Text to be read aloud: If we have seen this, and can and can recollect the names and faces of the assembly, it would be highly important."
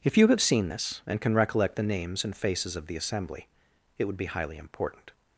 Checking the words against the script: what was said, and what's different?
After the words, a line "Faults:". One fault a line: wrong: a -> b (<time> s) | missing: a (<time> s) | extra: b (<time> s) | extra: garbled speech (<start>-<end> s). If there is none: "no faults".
If you have seen this, and can recollect the names and faces of the assembly, it would be highly important."
Faults:
wrong: we -> you (0.2 s)
missing: and can (1.3 s)